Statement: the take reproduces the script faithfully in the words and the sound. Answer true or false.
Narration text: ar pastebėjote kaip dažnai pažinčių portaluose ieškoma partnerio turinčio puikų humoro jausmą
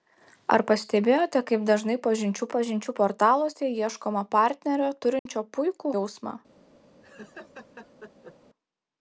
false